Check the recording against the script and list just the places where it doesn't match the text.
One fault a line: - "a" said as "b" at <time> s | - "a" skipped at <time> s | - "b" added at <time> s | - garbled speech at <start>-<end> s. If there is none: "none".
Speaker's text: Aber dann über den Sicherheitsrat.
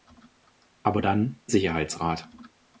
- "über den" skipped at 1.4 s